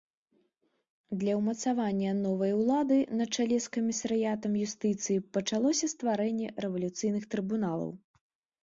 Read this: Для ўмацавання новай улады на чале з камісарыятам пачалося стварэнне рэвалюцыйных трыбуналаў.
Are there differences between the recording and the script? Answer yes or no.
yes